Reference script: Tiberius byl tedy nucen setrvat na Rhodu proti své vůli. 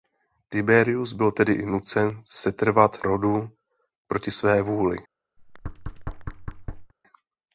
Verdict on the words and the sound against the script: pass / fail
fail